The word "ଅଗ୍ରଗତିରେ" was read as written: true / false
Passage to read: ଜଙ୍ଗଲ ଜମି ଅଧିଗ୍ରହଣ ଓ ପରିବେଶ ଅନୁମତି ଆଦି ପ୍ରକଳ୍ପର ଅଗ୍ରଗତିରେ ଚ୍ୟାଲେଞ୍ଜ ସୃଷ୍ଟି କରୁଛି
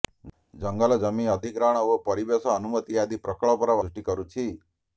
false